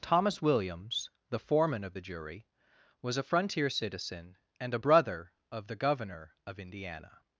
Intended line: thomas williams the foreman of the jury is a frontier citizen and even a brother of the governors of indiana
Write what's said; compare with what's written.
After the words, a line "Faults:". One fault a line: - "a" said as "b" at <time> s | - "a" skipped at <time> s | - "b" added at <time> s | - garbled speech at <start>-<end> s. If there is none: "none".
thomas williams the foreman of the jury was a frontier citizen and a brother of the governor of indiana
Faults:
- "is" said as "was" at 3.0 s
- "even" skipped at 4.7 s
- "governors" said as "governor" at 5.8 s